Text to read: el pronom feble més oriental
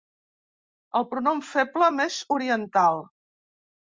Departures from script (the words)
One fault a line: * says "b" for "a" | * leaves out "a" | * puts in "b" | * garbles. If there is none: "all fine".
all fine